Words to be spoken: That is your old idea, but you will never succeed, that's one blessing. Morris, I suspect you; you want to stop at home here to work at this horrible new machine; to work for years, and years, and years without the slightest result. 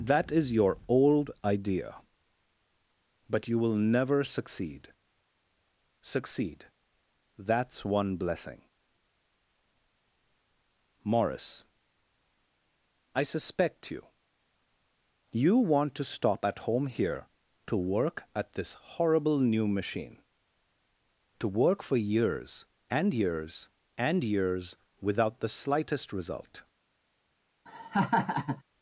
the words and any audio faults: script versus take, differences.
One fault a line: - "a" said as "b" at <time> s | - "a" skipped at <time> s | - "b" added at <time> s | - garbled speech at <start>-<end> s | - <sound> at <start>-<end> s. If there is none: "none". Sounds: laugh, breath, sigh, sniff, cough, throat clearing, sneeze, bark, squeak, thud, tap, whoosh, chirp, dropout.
- "succeed" added at 6.0 s
- laugh at 27.7-28.6 s